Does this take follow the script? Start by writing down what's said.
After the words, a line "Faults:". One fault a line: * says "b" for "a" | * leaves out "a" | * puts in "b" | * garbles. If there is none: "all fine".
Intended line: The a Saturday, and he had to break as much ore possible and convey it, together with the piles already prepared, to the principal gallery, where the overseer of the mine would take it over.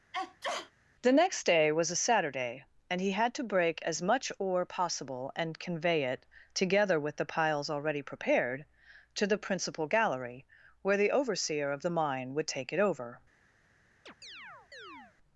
The next day was a Saturday, and he had to break as much ore possible and convey it, together with the piles already prepared, to the principal gallery, where the overseer of the mine would take it over.
Faults:
* puts in "next day was"